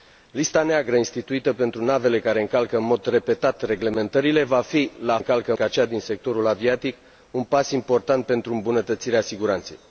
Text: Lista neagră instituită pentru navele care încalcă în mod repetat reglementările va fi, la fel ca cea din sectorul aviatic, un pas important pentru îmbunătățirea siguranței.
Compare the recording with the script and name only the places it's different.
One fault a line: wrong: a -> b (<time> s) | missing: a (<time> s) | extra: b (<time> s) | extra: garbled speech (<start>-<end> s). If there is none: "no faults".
wrong: fel -> încalcă (5.2 s)